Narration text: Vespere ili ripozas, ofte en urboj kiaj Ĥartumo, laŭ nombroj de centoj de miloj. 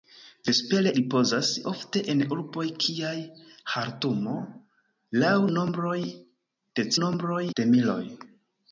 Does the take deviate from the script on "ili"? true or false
true